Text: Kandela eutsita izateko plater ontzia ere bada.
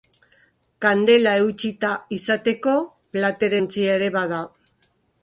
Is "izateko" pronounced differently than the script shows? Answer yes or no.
no